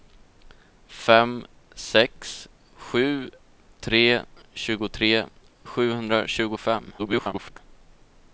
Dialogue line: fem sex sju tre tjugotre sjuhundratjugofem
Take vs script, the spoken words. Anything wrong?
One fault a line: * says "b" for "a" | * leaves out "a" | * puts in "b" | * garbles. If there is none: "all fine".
* garbles